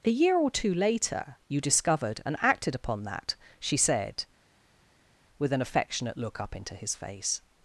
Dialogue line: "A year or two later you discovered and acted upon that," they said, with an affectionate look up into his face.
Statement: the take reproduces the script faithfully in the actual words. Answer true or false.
false